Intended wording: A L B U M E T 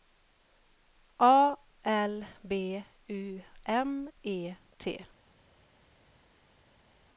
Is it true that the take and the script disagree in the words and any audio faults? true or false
false